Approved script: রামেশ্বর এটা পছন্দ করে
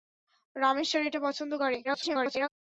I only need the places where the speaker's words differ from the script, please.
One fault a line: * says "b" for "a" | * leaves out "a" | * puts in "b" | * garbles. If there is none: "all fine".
* garbles